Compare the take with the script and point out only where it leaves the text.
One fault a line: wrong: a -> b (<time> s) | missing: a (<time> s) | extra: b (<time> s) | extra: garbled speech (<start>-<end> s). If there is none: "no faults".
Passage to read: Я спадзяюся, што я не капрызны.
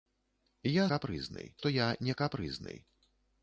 wrong: спадзяюся -> капрызны (0.9 s)